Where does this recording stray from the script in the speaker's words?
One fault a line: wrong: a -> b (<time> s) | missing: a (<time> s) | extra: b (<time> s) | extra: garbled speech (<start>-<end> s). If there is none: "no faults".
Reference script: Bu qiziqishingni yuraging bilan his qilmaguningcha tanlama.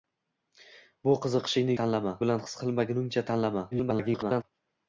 wrong: yuraging -> tanlama (1.8 s)
extra: garbled speech (3.7-4.4 s)